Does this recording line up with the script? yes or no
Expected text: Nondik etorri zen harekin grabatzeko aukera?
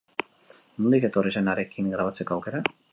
yes